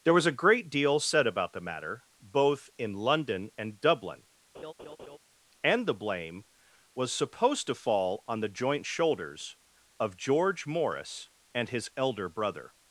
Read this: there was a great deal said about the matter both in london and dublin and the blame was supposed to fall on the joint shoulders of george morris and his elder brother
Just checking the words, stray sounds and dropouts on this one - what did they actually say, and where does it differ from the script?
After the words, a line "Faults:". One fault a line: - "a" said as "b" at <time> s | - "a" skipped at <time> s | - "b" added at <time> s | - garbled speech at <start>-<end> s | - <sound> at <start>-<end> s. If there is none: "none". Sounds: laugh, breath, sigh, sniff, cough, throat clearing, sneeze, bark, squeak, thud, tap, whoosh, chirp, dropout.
there was a great deal said about the matter both in london and dublin and the blame was supposed to fall on the joint shoulders of george morris and his elder brother
Faults:
- laugh at 4.5-5.2 s